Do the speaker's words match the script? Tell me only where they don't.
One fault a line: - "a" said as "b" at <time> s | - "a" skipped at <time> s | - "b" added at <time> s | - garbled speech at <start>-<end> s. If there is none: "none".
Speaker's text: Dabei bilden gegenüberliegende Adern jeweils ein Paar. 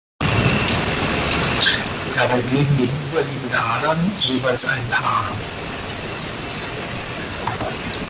none